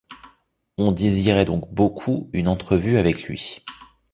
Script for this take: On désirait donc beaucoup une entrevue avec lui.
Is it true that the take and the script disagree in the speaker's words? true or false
false